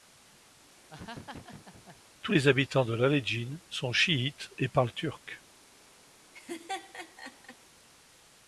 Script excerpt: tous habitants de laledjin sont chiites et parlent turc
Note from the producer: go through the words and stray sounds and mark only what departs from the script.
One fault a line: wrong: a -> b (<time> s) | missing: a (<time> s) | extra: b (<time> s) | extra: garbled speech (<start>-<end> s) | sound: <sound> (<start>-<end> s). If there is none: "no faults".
sound: laugh (0.9-2.0 s)
extra: les (2.3 s)
sound: laugh (6.3-7.6 s)